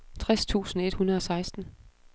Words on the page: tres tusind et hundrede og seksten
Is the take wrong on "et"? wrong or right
right